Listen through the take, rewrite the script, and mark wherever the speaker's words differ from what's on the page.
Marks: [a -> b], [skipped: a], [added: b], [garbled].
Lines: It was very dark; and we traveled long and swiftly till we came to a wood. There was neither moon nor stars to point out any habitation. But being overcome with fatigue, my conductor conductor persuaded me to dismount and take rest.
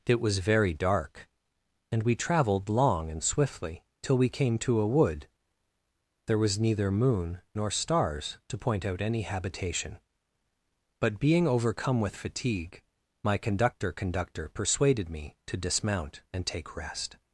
It was very dark; and we traveled long and swiftly till we came to a wood. There was neither moon nor stars to point out any habitation. But being overcome with fatigue, my conductor conductor persuaded me to dismount and take rest.